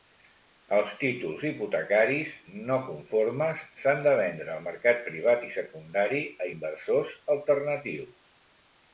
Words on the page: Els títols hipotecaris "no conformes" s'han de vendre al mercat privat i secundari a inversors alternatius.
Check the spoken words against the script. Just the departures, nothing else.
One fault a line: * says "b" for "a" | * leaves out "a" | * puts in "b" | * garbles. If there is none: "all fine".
all fine